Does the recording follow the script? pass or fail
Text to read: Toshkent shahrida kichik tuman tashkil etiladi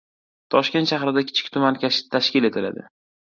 pass